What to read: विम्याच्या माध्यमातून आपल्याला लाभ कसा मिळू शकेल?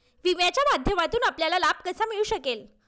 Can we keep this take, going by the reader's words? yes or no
yes